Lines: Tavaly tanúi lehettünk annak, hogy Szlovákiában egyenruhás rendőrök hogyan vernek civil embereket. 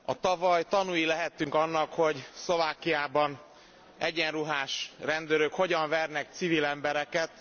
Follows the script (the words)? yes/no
yes